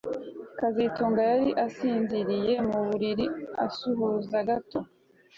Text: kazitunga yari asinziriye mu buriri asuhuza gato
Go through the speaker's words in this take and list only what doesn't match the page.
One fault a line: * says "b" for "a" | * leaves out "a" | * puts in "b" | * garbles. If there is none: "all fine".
all fine